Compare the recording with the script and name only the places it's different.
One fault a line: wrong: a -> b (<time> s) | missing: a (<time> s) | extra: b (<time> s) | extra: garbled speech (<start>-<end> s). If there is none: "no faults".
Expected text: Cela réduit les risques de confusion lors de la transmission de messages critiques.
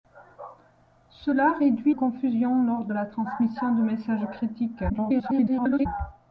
missing: les risques de (1.9 s)
extra: garbled speech (4.9-5.9 s)